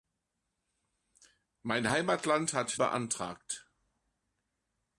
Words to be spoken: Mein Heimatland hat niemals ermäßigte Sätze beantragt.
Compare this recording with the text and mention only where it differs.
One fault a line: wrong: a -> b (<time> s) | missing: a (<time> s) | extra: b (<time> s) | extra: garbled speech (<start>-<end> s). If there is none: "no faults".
missing: niemals ermäßigte Sätze (2.8 s)